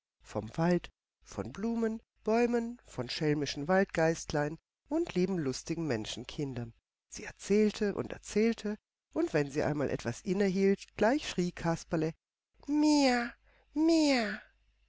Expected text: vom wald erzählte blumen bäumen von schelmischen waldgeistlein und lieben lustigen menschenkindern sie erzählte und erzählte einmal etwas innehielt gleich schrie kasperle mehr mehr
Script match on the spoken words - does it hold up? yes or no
no